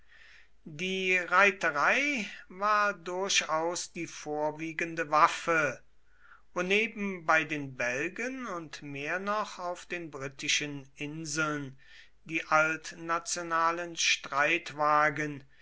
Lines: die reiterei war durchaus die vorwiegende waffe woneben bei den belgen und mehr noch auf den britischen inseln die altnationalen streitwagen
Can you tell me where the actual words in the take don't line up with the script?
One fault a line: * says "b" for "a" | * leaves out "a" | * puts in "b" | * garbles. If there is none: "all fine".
all fine